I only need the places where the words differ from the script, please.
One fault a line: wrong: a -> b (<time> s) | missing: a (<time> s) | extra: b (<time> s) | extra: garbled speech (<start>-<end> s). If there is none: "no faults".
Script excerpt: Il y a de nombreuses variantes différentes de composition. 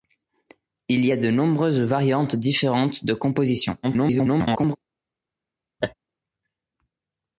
extra: garbled speech (3.8-4.8 s)